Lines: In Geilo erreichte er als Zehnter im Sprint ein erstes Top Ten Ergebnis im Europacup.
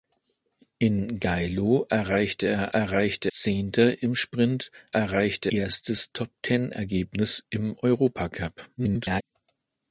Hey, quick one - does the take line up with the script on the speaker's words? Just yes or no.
no